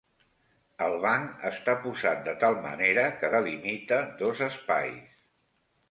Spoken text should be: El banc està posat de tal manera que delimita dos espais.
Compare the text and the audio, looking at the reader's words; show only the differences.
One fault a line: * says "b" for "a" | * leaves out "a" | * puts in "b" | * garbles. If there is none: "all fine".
all fine